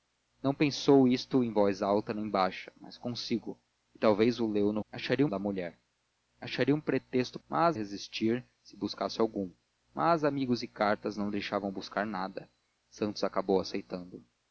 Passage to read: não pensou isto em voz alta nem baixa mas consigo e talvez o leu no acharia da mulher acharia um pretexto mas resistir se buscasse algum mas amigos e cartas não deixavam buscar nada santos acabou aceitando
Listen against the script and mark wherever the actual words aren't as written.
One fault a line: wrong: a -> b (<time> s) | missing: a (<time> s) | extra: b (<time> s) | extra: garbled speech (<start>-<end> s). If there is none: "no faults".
no faults